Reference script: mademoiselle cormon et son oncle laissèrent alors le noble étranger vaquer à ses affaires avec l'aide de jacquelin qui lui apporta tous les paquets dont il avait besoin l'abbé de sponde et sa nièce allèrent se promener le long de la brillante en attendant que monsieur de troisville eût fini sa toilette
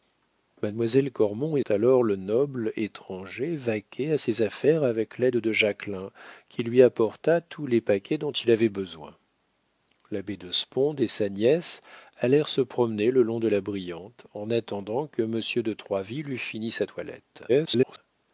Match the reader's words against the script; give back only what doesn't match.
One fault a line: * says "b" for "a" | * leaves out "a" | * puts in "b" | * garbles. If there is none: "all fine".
* leaves out "son oncle laissèrent"
* garbles